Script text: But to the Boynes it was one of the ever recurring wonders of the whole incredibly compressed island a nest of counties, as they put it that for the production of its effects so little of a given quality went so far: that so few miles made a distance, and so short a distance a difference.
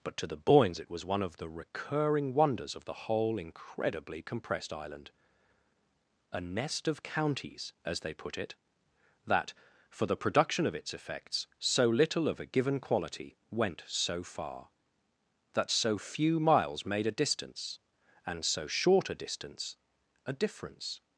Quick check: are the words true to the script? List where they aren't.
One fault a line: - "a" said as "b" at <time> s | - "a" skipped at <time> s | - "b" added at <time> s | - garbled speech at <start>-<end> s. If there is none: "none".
- "ever" skipped at 1.5 s